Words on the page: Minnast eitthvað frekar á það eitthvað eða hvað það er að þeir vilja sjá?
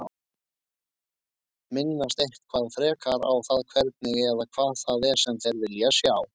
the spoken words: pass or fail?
fail